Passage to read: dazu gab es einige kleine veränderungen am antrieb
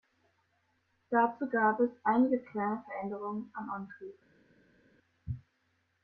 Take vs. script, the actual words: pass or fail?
pass